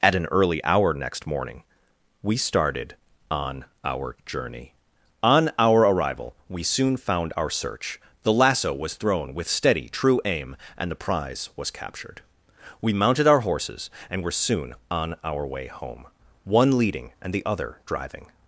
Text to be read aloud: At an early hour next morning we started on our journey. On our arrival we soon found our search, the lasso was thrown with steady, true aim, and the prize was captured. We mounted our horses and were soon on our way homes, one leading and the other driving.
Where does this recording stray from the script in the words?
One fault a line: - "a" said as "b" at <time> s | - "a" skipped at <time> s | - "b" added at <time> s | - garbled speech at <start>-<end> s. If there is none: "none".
- "homes" said as "home" at 15.7 s